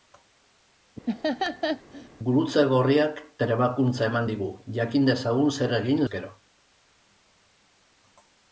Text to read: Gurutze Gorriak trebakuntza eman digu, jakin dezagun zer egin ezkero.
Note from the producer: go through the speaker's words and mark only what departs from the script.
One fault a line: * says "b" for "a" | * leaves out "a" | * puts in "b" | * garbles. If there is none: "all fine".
all fine